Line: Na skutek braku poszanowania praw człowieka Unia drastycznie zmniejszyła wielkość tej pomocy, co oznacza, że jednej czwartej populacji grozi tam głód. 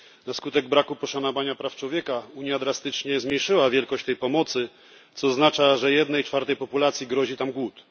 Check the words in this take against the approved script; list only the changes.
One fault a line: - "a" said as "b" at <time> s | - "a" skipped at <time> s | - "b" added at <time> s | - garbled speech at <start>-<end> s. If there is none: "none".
none